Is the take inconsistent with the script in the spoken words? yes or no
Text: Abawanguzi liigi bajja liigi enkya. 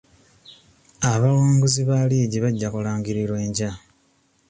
yes